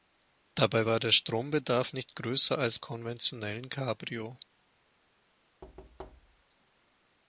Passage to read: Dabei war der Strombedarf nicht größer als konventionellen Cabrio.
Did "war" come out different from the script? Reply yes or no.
no